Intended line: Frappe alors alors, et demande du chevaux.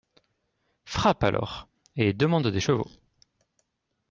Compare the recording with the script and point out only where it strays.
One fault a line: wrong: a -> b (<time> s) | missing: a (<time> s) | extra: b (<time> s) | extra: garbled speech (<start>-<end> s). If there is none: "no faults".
missing: alors (1.7 s)
wrong: du -> des (2.5 s)